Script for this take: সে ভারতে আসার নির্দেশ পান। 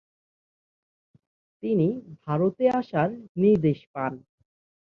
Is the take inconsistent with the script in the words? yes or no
yes